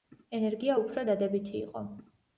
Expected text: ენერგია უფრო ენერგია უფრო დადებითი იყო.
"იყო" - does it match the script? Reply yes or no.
yes